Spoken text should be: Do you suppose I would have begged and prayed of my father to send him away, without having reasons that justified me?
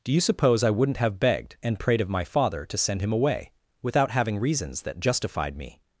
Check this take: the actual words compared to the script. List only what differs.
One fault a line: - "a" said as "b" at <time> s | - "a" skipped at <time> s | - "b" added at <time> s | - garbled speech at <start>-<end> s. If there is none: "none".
- "would" said as "wouldn't" at 0.7 s